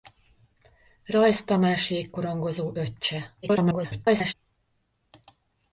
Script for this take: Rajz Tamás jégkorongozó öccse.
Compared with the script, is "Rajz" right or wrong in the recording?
right